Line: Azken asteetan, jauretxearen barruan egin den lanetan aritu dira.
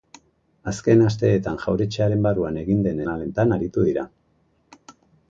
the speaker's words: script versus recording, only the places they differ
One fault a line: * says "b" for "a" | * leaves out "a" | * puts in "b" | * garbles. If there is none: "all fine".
all fine